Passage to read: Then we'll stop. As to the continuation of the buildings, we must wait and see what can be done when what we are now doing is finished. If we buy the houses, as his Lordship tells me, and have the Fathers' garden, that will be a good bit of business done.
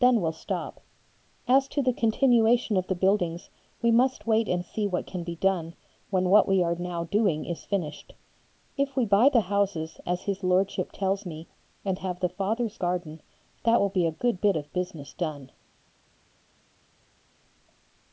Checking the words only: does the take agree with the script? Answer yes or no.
yes